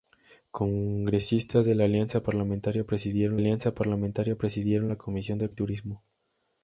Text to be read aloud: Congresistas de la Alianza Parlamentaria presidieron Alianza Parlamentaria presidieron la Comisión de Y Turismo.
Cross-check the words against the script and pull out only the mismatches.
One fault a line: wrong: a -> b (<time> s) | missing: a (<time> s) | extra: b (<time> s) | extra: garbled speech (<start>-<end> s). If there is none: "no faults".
no faults